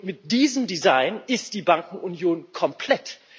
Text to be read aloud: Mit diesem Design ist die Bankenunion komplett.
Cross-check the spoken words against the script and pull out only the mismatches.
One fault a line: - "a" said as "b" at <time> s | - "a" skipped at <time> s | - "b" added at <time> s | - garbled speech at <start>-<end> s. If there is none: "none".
none